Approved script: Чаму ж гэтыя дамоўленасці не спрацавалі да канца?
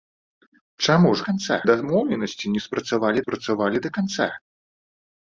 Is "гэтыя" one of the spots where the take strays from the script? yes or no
yes